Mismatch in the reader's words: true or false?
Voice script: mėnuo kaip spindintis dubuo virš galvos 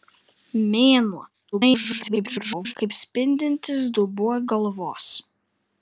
true